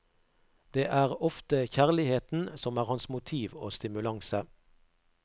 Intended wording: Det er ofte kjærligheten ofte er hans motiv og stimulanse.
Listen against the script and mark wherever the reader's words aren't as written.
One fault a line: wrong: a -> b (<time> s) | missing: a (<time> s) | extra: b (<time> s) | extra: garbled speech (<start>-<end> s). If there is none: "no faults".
wrong: ofte -> som (2.6 s)